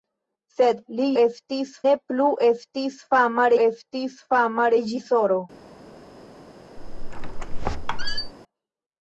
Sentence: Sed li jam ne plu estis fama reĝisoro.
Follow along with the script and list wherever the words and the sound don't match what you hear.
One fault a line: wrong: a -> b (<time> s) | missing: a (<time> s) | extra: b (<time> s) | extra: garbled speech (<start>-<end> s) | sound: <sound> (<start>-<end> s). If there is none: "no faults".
wrong: jam -> estis (1.2 s)
extra: estis fama (3.7 s)
sound: squeak (6.8-8.3 s)